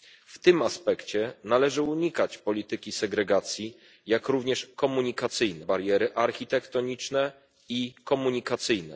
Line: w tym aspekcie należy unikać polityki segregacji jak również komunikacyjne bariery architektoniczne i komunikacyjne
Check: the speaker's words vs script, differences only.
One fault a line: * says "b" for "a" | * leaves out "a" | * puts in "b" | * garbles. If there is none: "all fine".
all fine